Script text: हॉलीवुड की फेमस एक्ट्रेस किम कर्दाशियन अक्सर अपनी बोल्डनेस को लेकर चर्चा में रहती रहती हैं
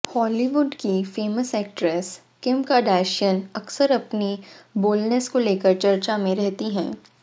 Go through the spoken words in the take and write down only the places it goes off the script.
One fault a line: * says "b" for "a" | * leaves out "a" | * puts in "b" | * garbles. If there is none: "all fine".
* leaves out "रहती"